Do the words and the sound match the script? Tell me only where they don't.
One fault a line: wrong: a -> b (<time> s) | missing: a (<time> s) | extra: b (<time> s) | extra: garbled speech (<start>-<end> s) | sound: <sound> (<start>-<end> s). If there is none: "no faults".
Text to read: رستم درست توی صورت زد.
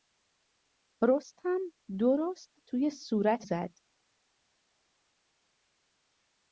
no faults